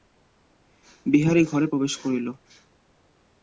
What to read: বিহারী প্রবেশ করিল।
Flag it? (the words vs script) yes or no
yes